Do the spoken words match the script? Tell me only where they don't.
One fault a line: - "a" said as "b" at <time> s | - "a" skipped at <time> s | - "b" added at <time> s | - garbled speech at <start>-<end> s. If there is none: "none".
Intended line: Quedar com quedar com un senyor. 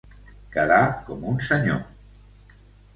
- "quedar com" skipped at 1.3 s